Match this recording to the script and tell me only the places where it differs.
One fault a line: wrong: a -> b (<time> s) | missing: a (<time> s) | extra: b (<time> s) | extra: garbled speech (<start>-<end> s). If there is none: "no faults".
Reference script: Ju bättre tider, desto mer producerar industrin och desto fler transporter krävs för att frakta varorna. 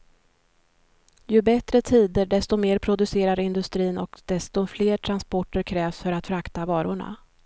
no faults